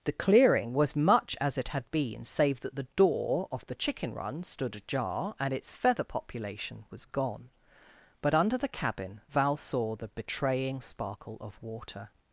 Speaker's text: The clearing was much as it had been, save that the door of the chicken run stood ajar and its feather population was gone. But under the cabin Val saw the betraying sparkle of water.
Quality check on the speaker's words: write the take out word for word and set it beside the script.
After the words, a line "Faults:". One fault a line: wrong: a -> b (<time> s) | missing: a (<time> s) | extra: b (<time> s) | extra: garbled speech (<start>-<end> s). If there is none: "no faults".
The clearing was much as it had been, save that the door of the chicken run stood ajar and its feather population was gone. But under the cabin Val saw the betraying sparkle of water.
Faults:
no faults